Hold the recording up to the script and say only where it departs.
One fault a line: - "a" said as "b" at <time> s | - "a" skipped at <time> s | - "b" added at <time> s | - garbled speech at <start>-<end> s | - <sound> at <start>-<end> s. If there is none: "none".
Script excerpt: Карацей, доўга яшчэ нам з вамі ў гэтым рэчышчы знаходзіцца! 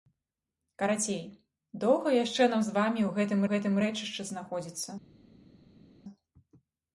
- "гэтым" added at 3.5 s